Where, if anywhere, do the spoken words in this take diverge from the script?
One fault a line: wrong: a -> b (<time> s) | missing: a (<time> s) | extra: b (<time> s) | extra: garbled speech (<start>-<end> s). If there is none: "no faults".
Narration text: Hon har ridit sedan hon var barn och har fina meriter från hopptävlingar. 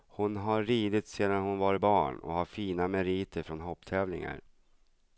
no faults